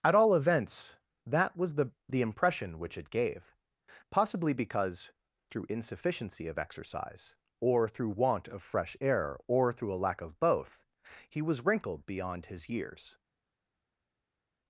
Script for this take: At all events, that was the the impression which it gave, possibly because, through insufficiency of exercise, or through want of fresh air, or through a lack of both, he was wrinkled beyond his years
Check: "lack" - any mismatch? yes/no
no